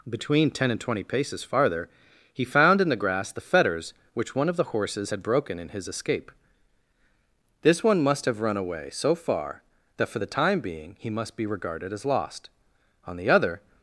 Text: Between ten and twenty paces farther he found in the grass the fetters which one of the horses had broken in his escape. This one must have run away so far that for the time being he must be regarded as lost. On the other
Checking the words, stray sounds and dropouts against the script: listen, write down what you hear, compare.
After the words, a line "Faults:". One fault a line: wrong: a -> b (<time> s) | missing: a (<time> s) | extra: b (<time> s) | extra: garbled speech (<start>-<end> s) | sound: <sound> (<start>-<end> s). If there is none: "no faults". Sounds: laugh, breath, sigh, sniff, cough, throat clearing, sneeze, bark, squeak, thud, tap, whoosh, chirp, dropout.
Between ten and twenty paces farther he found in the grass the fetters which one of the horses had broken in his escape. This one must have run away so far that for the time being he must be regarded as lost. On the other
Faults:
no faults